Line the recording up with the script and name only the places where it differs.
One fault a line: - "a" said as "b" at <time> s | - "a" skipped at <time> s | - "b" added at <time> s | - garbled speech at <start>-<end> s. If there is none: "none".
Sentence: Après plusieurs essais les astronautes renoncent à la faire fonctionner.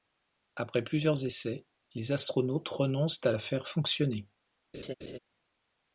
none